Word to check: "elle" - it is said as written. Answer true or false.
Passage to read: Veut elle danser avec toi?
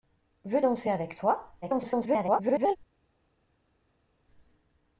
false